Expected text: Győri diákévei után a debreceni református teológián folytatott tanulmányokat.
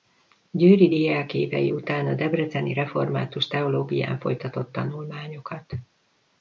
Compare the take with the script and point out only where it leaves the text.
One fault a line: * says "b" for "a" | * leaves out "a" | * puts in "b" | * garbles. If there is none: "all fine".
all fine